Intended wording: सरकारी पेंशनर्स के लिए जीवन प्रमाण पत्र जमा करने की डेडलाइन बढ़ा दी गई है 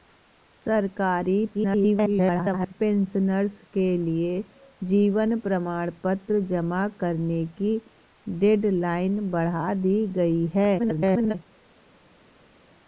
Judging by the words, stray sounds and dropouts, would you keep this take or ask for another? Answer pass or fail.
fail